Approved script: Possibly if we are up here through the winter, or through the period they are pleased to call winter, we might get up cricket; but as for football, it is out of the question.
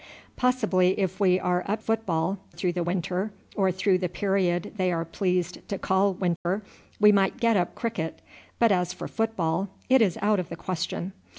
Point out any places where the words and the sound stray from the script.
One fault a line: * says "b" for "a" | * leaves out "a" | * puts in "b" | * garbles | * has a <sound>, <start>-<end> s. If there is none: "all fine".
* says "football" for "here"
* has a dropout, 6.4-6.5 s